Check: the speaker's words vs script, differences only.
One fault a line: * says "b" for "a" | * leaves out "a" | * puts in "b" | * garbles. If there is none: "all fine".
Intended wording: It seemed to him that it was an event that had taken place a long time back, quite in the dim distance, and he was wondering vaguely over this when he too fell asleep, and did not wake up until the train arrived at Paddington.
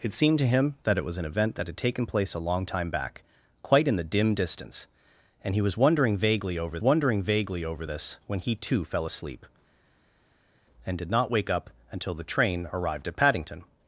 * puts in "wondering vaguely over"